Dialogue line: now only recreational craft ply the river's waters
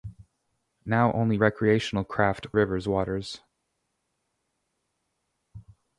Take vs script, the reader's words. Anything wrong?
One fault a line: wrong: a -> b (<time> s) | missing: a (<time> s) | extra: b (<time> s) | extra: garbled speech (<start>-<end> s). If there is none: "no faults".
missing: ply the (2.5 s)